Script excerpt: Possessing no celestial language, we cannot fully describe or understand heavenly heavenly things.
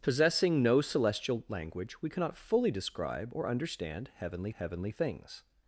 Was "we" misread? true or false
false